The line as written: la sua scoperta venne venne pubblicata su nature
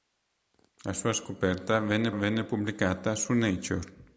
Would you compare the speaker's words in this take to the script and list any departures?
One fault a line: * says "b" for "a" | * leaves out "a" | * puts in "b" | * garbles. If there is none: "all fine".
all fine